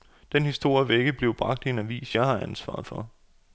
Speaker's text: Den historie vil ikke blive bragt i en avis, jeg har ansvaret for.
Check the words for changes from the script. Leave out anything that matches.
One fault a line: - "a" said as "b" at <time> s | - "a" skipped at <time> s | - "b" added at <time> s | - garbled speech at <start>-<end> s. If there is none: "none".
none